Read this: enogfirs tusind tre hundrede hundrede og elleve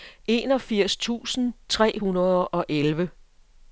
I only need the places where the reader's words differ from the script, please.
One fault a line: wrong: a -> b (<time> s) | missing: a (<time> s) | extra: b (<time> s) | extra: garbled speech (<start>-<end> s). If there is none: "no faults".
missing: hundrede (2.5 s)